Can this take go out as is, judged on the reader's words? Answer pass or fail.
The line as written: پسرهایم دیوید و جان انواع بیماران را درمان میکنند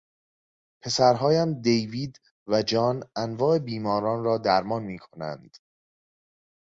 pass